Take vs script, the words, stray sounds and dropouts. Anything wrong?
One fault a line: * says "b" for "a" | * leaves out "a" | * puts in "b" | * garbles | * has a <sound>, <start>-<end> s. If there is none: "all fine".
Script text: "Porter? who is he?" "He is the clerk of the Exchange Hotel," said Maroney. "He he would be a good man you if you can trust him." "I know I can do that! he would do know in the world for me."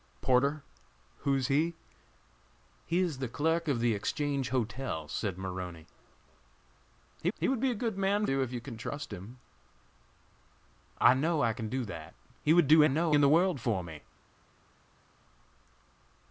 all fine